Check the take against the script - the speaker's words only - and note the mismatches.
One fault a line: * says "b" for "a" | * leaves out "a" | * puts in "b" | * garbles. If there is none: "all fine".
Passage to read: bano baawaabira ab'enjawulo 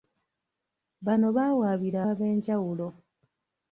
all fine